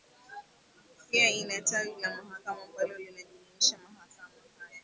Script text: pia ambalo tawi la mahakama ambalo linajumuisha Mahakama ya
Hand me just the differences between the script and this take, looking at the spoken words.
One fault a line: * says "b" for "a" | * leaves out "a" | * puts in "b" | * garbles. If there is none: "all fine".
* says "ina" for "ambalo"